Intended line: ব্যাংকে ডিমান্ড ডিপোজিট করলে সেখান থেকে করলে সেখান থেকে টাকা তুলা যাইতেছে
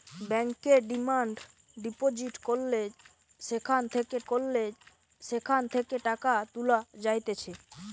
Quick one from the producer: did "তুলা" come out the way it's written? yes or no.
yes